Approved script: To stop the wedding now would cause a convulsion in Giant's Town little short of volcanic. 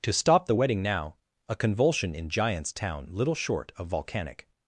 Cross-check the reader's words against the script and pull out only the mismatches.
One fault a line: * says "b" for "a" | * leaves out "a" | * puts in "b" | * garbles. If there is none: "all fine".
* leaves out "would cause"